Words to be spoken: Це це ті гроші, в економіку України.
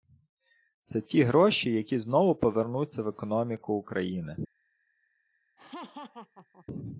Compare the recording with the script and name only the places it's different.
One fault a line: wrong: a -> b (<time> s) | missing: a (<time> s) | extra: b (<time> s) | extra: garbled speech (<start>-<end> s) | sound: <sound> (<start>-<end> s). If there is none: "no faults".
missing: це (1.0 s)
extra: які знову повернуться (1.7 s)
sound: laugh (5.6-6.7 s)